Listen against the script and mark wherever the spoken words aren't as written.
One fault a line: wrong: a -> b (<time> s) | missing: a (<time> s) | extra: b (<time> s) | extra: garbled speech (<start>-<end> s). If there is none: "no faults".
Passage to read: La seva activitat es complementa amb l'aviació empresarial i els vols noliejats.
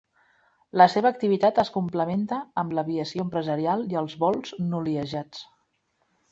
no faults